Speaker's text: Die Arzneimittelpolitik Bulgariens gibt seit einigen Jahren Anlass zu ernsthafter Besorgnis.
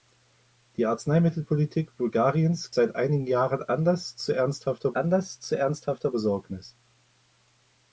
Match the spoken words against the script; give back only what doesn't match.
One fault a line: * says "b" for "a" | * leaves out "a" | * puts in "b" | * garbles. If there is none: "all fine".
* leaves out "gibt"
* puts in "Anlass zu ernsthafter"